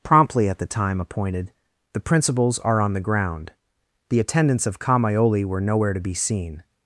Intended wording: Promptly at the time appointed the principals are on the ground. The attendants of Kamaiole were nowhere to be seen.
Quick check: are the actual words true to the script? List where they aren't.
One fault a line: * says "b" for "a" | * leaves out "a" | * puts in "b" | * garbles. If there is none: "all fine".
all fine